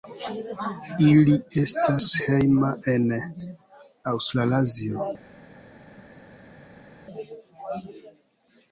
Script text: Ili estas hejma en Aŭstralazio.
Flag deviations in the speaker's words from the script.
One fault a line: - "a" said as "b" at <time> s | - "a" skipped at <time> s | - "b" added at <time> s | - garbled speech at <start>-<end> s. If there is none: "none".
none